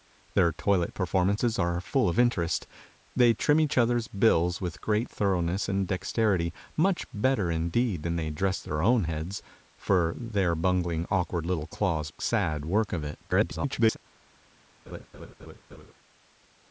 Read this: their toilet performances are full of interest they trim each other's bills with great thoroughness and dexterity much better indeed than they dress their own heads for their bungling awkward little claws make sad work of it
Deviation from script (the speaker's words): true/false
true